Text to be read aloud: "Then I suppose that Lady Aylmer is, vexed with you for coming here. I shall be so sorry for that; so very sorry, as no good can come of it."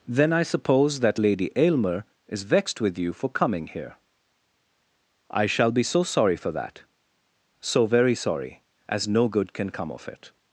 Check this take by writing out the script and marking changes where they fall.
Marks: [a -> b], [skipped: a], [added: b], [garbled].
"Then I suppose that Lady Aylmer is, vexed with you for coming here. I shall be so sorry for that; so very sorry, as no good can come of it."